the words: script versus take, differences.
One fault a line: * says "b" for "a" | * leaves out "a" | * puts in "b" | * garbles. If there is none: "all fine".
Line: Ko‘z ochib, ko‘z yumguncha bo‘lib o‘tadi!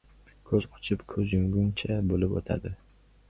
all fine